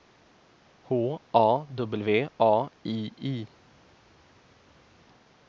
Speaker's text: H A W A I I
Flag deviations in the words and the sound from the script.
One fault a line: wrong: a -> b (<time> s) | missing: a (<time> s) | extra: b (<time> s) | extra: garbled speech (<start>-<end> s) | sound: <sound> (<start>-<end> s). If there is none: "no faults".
no faults